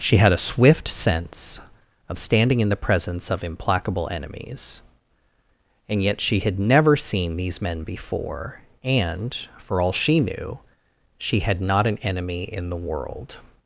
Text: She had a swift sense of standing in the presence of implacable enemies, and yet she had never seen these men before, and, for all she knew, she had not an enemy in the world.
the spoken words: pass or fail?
pass